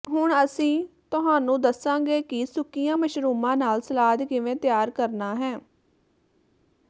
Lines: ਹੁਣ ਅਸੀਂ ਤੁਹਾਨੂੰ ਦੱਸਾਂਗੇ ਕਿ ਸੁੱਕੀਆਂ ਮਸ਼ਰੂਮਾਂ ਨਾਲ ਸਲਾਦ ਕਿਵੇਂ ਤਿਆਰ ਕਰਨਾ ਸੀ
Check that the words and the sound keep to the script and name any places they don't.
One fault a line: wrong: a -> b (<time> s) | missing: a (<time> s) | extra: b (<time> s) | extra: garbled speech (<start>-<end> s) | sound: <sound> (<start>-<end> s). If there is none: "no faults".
wrong: ਸੀ -> ਹੈ (5.4 s)